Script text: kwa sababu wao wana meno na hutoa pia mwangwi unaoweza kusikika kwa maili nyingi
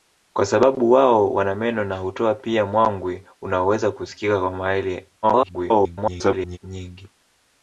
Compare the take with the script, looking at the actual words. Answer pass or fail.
fail